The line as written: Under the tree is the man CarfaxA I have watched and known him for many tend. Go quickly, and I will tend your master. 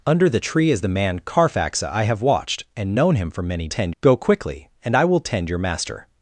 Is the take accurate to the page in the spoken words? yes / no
yes